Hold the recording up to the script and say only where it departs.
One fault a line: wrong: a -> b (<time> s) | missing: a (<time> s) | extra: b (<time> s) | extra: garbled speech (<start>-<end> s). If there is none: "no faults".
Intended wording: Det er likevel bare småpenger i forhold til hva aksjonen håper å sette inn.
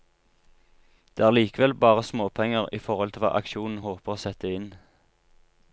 no faults